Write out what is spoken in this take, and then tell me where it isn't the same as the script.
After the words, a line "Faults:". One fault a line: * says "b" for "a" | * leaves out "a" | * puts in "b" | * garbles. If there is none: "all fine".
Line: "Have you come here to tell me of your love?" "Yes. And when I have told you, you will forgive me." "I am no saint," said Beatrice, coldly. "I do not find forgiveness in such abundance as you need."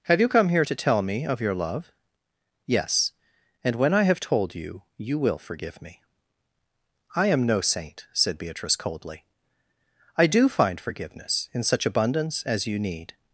"Have you come here to tell me of your love?" "Yes. And when I have told you, you will forgive me." "I am no saint," said Beatrice, coldly. "I do find forgiveness in such abundance as you need."
Faults:
* leaves out "not"